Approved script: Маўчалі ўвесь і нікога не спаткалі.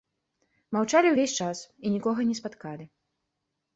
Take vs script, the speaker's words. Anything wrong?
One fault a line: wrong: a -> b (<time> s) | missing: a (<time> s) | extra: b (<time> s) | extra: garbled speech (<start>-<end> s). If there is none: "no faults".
extra: час (1.4 s)